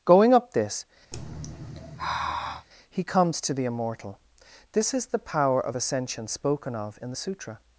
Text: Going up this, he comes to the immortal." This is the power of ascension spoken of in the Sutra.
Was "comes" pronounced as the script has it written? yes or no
yes